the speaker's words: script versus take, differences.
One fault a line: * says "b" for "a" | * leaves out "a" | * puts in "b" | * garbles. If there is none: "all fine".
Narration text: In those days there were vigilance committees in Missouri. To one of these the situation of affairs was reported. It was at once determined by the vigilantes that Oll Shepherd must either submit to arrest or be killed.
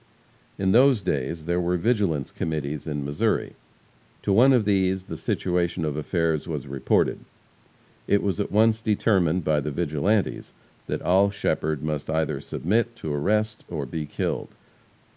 all fine